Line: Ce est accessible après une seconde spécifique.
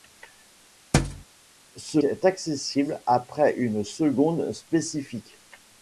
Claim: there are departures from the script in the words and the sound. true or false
true